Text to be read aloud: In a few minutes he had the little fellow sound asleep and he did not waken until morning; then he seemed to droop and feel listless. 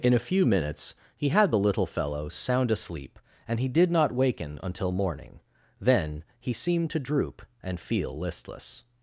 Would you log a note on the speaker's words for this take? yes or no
no